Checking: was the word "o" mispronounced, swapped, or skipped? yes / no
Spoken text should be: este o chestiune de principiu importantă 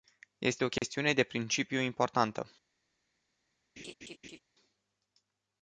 no